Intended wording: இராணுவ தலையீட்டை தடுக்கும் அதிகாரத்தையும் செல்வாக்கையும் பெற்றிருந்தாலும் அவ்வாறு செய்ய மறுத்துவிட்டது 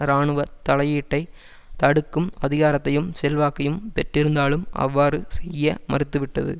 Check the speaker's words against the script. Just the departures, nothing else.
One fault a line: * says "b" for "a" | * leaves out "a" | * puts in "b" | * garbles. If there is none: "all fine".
all fine